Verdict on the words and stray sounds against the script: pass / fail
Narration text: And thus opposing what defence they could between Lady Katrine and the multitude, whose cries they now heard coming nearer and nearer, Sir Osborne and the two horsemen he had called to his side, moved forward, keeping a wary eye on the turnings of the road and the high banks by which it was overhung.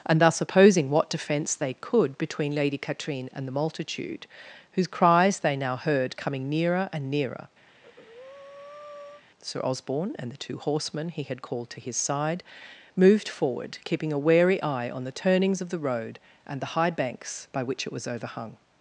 fail